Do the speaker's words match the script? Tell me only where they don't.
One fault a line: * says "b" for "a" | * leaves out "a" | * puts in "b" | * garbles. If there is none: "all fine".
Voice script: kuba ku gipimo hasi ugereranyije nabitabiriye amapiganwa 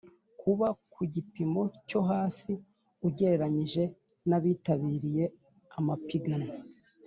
* puts in "cyo"